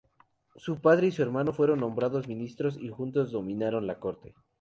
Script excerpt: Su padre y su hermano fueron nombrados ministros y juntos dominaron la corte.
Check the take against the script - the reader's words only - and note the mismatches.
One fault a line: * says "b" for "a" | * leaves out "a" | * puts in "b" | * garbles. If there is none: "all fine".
all fine